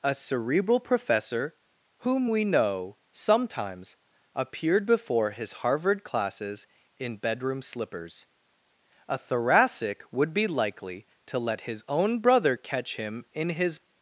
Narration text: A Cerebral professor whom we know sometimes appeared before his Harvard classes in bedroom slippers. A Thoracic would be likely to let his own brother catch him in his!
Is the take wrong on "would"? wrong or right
right